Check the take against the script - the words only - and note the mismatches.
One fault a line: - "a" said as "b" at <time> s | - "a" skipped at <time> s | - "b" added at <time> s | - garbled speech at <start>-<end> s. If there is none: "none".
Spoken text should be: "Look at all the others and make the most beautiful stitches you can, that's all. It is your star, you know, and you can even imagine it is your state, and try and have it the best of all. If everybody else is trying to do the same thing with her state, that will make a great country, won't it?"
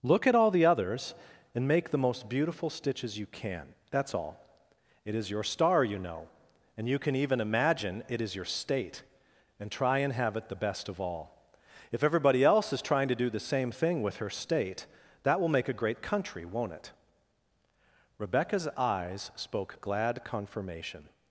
- "Rebecca's eyes spoke glad confirmation" added at 18.2 s